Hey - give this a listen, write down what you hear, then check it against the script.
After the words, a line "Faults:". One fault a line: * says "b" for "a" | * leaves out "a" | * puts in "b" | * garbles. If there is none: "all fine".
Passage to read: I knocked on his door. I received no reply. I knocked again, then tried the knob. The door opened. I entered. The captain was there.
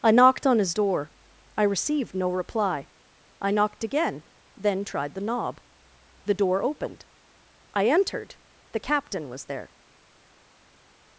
I knocked on his door. I received no reply. I knocked again, then tried the knob. The door opened. I entered. The captain was there.
Faults:
all fine